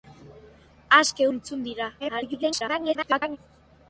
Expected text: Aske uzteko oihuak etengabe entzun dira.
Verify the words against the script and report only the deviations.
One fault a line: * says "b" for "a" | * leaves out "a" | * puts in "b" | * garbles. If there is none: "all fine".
* leaves out "uzteko oihuak etengabe"
* garbles